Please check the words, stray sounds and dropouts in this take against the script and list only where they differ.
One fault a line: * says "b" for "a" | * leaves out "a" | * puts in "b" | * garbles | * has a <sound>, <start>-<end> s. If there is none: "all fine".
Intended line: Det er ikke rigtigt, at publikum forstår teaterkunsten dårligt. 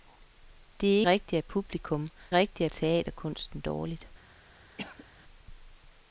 * leaves out "ikke"
* says "rigtigt" for "forstår"
* has a cough, 4.8-5.1 s